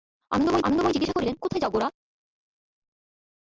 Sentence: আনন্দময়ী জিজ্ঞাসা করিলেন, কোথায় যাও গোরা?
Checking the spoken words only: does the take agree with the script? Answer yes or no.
no